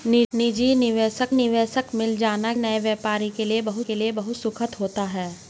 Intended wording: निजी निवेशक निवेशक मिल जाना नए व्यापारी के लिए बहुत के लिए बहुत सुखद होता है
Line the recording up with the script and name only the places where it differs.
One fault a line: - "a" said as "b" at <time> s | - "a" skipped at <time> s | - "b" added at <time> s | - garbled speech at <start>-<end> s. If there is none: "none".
none